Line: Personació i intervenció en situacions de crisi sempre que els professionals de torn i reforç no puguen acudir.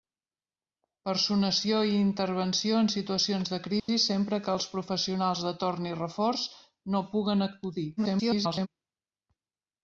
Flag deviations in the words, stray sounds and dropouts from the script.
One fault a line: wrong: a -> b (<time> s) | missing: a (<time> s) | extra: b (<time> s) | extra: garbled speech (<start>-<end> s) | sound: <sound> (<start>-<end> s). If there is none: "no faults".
sound: dropout (3.8-3.9 s)
extra: garbled speech (8.0-8.7 s)